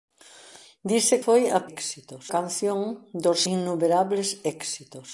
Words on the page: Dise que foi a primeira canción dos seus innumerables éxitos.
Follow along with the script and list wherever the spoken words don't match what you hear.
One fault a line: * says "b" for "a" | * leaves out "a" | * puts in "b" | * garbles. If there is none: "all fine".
* leaves out "que"
* says "éxitos" for "primeira"
* leaves out "seus"